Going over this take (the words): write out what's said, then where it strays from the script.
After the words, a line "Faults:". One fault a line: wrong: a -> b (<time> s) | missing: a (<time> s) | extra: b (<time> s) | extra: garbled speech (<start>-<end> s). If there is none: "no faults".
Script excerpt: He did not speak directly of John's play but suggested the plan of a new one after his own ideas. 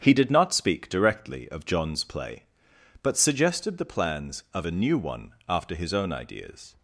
He did not speak directly of John's play but suggested the plans of a new one after his own ideas.
Faults:
wrong: plan -> plans (3.9 s)